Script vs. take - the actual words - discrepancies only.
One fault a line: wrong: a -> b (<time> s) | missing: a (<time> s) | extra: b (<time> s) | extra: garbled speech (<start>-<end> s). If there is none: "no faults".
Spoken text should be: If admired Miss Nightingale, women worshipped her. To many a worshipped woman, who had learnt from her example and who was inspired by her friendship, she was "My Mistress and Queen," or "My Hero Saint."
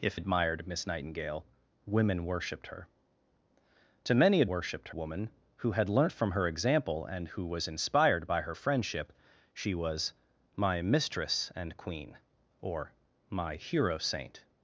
no faults